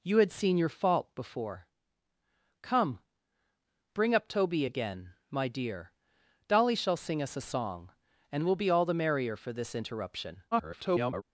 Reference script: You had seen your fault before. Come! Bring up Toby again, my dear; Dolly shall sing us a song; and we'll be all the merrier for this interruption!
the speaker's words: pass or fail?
fail